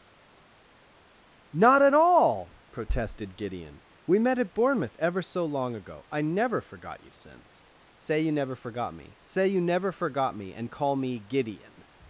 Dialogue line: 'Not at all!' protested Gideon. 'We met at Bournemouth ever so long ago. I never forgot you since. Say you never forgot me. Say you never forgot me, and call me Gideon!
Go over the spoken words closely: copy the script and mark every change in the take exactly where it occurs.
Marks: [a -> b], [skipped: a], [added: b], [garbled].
'Not at all!' protested Gideon. 'We met at Bournemouth ever so long ago. I never forgot you since. Say you never forgot me. Say you never forgot me, and call me Gideon!